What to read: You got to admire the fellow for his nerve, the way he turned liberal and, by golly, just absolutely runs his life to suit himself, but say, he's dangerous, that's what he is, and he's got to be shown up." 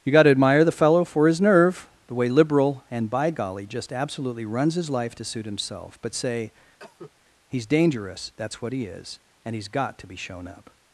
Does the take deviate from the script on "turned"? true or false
true